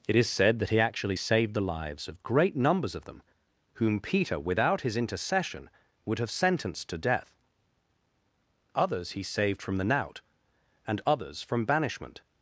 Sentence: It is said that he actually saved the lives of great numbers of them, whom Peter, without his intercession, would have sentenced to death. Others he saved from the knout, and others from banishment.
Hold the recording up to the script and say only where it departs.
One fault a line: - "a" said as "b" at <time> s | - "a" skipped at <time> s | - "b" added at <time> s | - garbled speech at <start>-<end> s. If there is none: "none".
none